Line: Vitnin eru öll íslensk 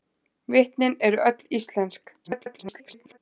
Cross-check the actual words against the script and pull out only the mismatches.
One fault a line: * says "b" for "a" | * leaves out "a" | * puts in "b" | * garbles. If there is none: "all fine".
* garbles